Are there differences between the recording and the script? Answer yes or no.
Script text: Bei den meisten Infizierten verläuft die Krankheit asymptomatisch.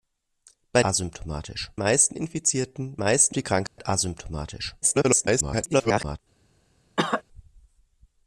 yes